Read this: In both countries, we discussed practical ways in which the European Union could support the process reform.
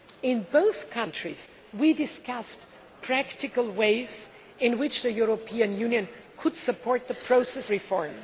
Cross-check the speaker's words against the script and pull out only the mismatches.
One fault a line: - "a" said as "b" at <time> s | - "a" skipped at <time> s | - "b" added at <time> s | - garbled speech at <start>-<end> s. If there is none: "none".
none